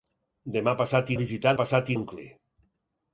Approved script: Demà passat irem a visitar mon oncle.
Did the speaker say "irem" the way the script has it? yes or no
no